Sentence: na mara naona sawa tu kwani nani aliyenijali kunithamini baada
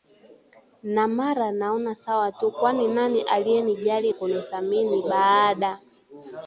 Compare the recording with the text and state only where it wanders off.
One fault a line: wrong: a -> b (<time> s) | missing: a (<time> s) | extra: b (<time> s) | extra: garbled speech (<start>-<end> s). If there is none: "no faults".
no faults